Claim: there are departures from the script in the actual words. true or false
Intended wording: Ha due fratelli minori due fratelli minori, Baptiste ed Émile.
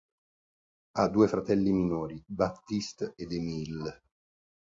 true